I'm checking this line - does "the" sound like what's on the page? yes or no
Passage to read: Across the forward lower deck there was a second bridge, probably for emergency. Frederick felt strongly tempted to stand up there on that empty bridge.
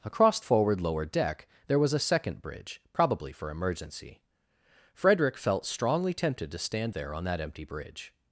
no